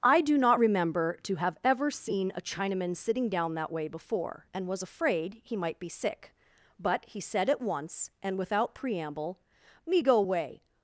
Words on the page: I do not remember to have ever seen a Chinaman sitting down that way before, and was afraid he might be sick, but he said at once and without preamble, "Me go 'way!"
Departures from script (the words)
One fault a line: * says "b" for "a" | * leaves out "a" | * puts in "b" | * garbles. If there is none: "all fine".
all fine